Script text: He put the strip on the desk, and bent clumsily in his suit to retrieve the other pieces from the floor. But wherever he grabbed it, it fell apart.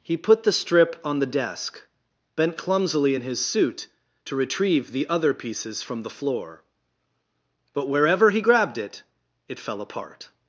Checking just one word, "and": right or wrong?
wrong